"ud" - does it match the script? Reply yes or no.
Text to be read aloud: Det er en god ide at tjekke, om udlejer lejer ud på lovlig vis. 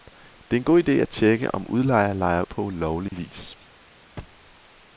no